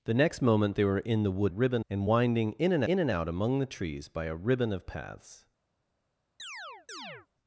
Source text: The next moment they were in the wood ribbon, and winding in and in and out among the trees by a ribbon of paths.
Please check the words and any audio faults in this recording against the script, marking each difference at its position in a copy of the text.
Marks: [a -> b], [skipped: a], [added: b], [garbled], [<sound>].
The next moment they were in the wood ribbon, and winding in and in and out among the trees by a ribbon of paths. [chirp]